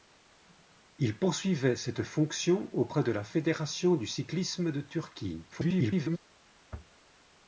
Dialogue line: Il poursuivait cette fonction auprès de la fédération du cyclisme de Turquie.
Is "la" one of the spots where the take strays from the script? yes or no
no